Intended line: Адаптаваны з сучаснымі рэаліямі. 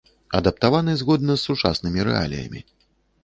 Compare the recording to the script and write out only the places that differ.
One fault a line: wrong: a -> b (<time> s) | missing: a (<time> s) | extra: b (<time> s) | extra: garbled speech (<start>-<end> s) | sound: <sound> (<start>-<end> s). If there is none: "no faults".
extra: згодна (1.0 s)